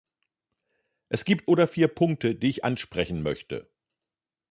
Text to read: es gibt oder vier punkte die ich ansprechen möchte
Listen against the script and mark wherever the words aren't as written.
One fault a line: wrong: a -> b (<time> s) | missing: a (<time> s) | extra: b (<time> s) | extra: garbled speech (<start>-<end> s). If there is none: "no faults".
no faults